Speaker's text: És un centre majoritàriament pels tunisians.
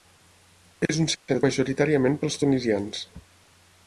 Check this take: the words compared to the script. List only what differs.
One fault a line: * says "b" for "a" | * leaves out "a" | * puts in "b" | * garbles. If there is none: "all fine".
all fine